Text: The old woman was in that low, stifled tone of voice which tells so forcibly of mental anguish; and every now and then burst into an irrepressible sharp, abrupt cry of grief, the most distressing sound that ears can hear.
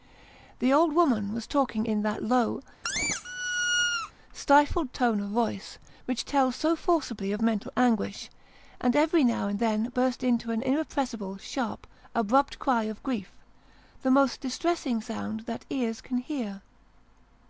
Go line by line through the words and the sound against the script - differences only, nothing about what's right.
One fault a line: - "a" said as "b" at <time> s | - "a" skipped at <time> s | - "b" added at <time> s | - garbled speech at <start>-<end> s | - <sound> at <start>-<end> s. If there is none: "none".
- "talking" added at 1.4 s
- squeak at 2.8-4.1 s